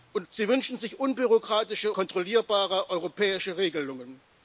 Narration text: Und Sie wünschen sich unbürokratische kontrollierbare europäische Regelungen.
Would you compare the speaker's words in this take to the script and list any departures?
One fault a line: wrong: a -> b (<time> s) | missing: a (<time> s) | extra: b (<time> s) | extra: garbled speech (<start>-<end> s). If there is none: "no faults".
no faults